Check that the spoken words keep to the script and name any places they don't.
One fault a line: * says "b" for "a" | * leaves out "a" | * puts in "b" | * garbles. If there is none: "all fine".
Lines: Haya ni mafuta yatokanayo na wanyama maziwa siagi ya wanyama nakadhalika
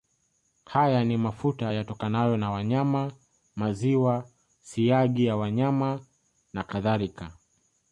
all fine